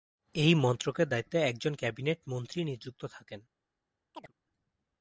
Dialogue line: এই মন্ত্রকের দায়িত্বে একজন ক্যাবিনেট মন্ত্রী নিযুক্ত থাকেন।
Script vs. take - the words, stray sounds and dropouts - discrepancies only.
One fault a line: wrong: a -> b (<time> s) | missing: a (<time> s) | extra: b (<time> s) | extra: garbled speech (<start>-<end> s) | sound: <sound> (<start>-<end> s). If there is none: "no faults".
sound: chirp (4.1-4.3 s)